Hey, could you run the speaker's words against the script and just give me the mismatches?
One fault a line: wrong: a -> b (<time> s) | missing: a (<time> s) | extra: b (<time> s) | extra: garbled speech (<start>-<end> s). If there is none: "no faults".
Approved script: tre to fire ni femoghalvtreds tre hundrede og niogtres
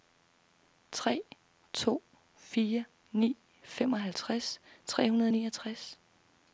no faults